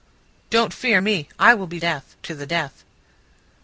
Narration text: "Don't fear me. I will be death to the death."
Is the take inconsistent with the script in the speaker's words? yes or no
no